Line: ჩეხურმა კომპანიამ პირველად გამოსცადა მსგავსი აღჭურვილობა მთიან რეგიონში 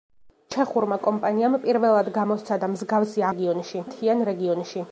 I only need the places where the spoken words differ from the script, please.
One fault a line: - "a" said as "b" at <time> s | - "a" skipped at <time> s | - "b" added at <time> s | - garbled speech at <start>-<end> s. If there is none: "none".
- "აღჭურვილობა" said as "რეგიონში" at 3.3 s